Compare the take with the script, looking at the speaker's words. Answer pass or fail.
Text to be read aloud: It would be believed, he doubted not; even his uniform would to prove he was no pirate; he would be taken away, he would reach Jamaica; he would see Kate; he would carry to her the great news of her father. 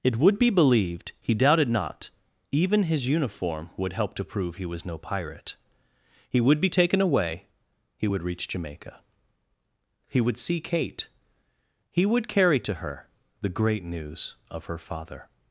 fail